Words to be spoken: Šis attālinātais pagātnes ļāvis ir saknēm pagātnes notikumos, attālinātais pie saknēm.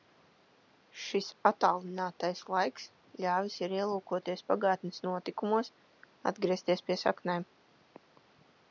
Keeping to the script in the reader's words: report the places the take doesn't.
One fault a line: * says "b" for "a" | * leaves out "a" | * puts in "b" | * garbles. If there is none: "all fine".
* says "laiks" for "pagātnes"
* says "ielūkoties" for "saknēm"
* says "atgriezties" for "attālinātais"